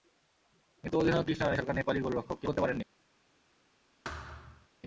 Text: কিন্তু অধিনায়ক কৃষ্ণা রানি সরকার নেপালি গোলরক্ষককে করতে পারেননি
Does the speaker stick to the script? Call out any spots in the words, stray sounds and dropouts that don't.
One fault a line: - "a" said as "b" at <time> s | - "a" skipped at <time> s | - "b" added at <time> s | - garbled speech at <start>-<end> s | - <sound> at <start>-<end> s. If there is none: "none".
- thud at 4.0-4.7 s